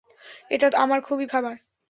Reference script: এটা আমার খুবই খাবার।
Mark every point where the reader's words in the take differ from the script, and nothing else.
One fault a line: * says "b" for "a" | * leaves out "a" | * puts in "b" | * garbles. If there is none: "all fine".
all fine